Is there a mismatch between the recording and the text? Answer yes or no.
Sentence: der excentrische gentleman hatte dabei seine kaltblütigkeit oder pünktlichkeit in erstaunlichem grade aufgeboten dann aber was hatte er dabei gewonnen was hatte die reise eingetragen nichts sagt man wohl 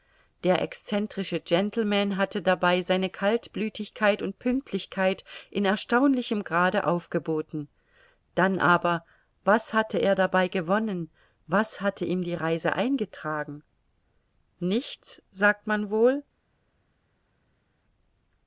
yes